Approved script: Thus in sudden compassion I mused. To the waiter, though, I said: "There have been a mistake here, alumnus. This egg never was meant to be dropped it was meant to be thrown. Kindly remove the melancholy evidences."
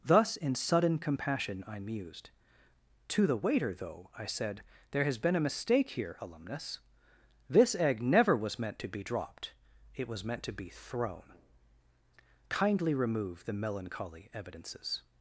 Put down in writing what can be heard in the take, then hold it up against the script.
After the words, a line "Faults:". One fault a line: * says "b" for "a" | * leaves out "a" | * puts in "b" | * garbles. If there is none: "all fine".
Thus in sudden compassion I mused. To the waiter, though, I said: "There has been a mistake here, alumnus. This egg never was meant to be dropped it was meant to be thrown. Kindly remove the melancholy evidences."
Faults:
* says "has" for "have"